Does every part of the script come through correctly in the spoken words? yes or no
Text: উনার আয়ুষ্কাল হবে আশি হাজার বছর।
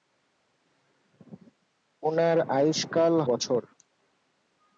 no